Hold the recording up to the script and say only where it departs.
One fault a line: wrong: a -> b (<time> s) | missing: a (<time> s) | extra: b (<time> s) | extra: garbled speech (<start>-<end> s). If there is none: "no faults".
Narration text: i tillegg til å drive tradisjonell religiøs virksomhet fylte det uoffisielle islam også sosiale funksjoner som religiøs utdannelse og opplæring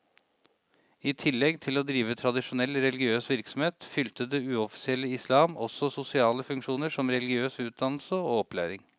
no faults